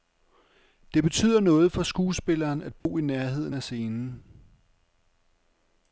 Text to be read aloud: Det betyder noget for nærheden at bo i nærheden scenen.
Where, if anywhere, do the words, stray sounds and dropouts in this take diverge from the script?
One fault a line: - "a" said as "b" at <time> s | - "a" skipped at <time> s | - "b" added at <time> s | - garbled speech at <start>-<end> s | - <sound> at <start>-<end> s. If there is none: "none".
- "nærheden" said as "skuespilleren" at 1.8 s
- dropout at 2.8-2.9 s
- "af" added at 3.5 s